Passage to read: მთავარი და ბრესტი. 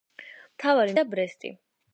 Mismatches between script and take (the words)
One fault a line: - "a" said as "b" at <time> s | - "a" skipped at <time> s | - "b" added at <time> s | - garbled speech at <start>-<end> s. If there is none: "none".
none